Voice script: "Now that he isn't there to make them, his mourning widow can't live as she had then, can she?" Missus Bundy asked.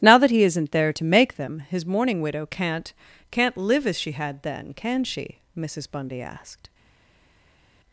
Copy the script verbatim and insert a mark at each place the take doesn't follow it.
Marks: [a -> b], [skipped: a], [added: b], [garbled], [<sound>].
"Now that he isn't there to make them, his mourning widow can't [added: can't] live as she had then, can she?" Missus Bundy asked.